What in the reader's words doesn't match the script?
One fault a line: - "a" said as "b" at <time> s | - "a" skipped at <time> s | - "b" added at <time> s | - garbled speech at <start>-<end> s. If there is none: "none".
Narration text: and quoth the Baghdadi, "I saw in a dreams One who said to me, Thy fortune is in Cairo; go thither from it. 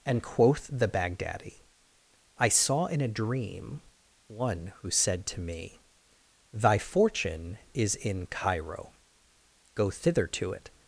- "dreams" said as "dream" at 3.1 s
- "from" said as "to" at 10.3 s